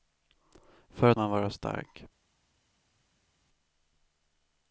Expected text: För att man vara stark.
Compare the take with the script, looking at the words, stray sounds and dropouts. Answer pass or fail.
pass